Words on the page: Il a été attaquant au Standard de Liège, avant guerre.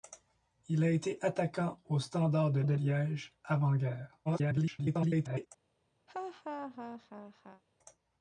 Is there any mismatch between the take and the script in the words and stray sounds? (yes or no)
yes